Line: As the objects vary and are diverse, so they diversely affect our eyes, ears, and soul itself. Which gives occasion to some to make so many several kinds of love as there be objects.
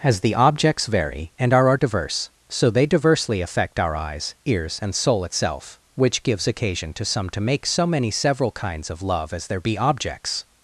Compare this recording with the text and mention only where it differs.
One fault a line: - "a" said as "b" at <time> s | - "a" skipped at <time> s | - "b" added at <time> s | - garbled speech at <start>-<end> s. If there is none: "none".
- "are" added at 1.7 s